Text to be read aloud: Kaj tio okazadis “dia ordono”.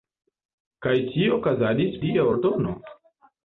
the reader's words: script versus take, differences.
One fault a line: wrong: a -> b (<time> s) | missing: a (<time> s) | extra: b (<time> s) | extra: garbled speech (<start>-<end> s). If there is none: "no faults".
no faults